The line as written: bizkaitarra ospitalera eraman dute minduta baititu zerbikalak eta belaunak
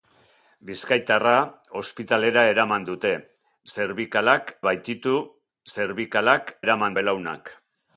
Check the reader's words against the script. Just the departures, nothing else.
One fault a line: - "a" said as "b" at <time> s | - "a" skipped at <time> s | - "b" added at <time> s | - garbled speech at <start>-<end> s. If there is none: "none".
- "minduta" said as "zerbikalak" at 3.7 s
- "eta" said as "eraman" at 6.6 s